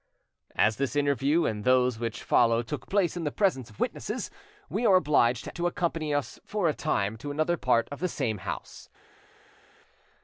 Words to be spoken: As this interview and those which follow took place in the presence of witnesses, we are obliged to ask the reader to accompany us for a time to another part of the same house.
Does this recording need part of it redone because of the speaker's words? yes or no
yes